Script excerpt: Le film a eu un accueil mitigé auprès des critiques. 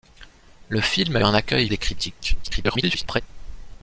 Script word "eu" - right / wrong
wrong